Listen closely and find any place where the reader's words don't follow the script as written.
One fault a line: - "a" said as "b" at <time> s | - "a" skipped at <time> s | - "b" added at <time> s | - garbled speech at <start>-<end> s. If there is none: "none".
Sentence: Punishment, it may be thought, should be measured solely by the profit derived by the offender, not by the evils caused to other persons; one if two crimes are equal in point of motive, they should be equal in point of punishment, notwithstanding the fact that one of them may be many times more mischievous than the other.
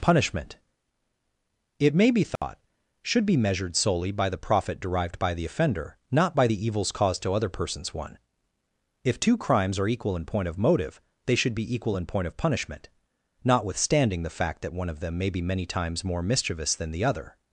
none